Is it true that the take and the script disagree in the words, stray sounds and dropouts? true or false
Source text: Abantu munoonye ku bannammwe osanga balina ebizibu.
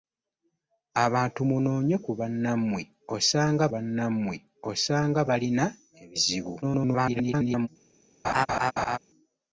true